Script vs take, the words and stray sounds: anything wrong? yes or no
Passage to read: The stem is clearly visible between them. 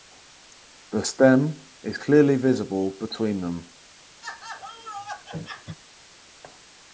yes